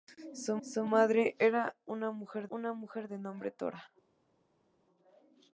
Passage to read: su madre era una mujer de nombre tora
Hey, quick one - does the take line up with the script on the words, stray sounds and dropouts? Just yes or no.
no